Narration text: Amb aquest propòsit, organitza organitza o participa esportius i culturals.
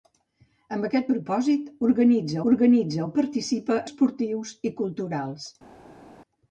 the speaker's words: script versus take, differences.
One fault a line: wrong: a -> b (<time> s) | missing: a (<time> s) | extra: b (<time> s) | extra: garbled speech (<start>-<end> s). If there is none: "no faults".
no faults